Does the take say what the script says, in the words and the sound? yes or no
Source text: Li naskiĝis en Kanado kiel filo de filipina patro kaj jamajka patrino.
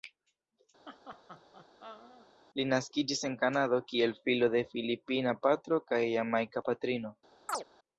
no